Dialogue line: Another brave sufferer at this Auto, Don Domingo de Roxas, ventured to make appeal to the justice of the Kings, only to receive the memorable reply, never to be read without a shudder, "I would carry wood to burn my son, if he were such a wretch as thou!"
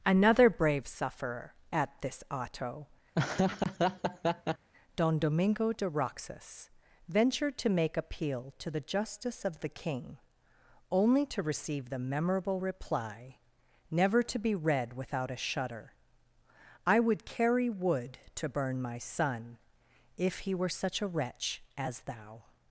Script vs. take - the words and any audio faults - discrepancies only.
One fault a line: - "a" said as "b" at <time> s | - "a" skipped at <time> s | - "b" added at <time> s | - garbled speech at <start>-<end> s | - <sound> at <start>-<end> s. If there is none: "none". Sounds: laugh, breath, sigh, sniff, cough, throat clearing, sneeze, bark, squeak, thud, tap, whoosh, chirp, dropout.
- laugh at 3.1-4.7 s
- "Kings" said as "King" at 9.7 s